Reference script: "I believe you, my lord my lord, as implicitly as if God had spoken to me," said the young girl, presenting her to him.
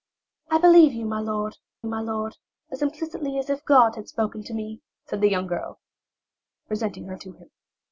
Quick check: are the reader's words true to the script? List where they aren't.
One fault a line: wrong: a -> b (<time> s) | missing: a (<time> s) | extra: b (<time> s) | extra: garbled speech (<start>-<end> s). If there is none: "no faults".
no faults